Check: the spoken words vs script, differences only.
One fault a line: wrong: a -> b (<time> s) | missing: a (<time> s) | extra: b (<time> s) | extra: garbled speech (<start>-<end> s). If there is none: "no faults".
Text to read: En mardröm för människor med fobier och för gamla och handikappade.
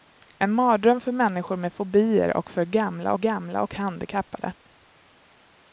extra: gamla (3.1 s)